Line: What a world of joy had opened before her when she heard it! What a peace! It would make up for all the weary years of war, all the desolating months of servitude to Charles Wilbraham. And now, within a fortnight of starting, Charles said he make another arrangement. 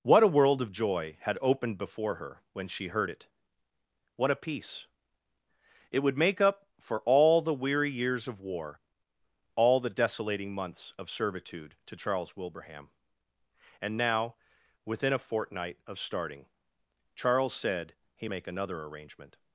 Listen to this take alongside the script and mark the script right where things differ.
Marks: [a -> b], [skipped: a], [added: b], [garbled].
What a world of joy had opened before her when she heard it! What a peace! It would make up for all the weary years of war, all the desolating months of servitude to Charles Wilbraham. And now, within a fortnight of starting, Charles said he make another arrangement.